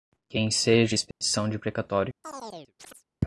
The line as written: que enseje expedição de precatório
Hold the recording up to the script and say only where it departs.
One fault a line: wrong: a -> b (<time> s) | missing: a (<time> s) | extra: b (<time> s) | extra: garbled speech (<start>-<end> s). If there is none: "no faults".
no faults